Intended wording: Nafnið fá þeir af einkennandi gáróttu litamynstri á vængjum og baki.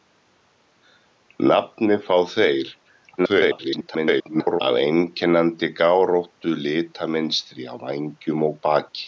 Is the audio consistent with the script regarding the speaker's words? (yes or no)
no